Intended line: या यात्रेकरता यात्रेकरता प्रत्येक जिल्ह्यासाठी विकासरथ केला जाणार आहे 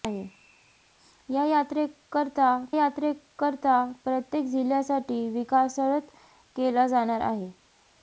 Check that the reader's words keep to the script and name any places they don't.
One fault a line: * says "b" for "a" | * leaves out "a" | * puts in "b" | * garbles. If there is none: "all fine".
all fine